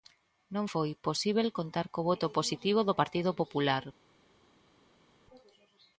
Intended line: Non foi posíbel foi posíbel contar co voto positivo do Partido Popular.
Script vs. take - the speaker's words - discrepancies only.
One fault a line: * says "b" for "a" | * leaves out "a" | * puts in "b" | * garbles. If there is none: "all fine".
* leaves out "foi posíbel"